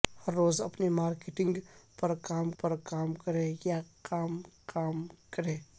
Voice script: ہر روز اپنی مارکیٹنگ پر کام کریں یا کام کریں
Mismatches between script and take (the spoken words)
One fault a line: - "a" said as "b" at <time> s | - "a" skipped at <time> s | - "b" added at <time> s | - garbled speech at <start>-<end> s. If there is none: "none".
- "پر کام" added at 2.6 s
- "کام" added at 4.6 s